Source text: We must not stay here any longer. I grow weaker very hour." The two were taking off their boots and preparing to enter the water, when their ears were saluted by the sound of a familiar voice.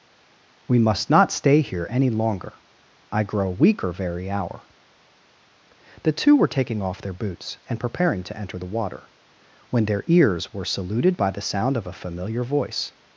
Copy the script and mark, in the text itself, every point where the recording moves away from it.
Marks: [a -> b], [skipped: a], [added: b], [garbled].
We must not stay here any longer. I grow weaker very hour." The two were taking off their boots and preparing to enter the water, when their ears were saluted by the sound of a familiar voice.